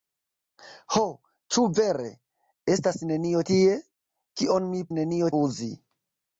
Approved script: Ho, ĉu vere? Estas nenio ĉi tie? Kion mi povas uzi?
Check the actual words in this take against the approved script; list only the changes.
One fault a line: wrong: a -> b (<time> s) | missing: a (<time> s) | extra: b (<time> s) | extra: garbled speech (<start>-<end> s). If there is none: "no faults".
missing: ĉi (3.4 s)
wrong: povas -> nenio (5.0 s)